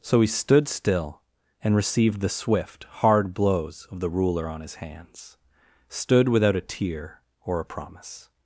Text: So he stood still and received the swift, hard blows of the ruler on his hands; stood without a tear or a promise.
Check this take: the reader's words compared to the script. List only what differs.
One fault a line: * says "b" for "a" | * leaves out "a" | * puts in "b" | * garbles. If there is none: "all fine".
all fine